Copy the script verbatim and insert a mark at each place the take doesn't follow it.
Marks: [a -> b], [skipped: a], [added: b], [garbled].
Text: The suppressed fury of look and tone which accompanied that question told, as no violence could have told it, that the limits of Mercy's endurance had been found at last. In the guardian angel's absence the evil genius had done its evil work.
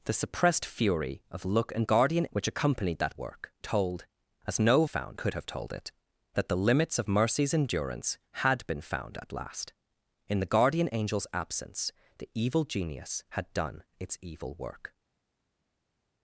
The suppressed fury of look and [tone -> guardian] which accompanied that [question -> work] told, as no [violence -> found] could have told it, that the limits of Mercy's endurance had been found at last. In the guardian angel's absence the evil genius had done its evil work.